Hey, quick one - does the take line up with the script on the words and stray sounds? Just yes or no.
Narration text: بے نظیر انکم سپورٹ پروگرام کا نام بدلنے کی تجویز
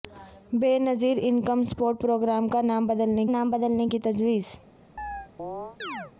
no